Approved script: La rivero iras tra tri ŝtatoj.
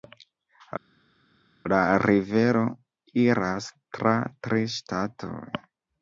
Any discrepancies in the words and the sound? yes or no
no